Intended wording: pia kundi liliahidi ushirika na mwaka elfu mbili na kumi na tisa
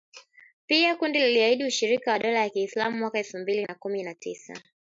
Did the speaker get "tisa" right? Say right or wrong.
right